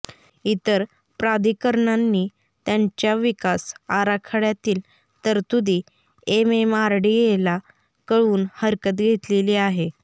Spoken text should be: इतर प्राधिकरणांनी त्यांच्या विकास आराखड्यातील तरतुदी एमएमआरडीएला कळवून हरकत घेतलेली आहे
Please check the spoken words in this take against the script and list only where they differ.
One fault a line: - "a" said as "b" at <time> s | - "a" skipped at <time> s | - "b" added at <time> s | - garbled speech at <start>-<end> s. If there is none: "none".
none